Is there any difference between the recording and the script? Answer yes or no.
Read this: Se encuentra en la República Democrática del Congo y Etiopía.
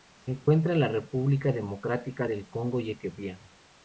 no